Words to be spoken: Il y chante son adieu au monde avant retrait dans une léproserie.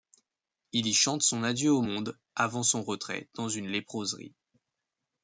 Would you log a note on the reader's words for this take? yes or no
yes